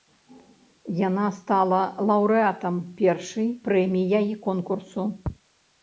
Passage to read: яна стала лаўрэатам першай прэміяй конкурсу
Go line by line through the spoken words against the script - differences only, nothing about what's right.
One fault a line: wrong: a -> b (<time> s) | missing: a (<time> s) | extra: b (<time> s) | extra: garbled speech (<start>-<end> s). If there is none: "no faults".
no faults